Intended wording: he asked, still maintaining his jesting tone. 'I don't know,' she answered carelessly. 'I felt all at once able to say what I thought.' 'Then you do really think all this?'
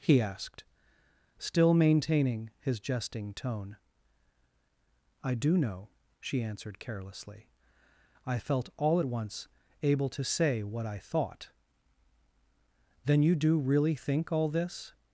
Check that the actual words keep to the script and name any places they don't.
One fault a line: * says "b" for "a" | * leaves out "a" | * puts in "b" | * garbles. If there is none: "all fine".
* says "do" for "don't"